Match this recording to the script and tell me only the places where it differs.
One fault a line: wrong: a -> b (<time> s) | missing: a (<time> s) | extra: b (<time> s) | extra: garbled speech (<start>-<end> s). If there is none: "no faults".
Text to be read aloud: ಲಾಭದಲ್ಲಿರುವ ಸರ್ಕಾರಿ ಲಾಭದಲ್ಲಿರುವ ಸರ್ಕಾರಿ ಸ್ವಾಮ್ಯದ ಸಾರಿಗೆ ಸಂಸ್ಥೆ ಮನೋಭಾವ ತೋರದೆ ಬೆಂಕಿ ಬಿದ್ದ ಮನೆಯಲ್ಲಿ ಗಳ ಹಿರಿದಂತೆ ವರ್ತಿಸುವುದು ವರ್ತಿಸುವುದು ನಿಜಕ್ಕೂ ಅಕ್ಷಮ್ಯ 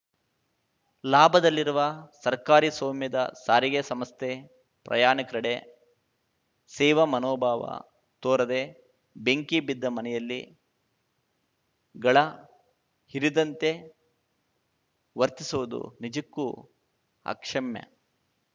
missing: ಲಾಭದಲ್ಲಿರುವ ಸರ್ಕಾರಿ (2.7 s)
extra: ಪ್ರಯಾಣಿಕರೆಡೆ ಸೇವಾ (4.8 s)
missing: ವರ್ತಿಸುವುದು (15.8 s)